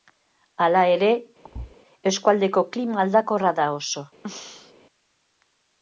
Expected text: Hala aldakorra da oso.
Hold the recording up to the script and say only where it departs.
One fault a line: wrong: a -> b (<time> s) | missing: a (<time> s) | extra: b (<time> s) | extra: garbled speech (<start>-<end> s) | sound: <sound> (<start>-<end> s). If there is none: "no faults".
extra: ere eskualdeko klima (0.9 s)
sound: thud (1.4-1.8 s)
sound: throat clearing (4.2-4.7 s)